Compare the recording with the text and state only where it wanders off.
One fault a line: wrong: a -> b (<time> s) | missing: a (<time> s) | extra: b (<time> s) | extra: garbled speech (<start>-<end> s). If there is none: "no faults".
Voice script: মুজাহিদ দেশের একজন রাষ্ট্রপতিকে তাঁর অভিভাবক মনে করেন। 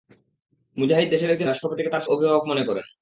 no faults